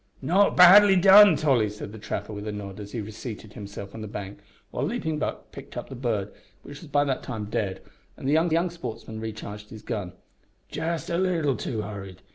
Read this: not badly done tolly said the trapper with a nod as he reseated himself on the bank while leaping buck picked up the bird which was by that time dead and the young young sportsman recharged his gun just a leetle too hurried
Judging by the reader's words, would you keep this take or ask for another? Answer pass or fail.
pass